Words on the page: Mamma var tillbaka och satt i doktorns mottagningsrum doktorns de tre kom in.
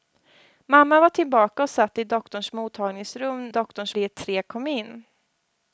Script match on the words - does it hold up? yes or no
yes